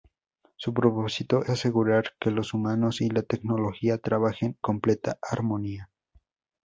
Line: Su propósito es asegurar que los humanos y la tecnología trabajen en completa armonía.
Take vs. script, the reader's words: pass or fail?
fail